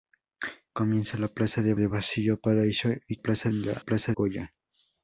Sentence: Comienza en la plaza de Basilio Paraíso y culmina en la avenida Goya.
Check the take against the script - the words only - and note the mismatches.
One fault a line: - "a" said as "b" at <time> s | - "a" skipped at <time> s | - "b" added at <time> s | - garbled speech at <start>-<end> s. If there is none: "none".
- "de" added at 1.7 s
- "culmina" said as "plaza" at 3.1 s
- "avenida" said as "plaza" at 3.8 s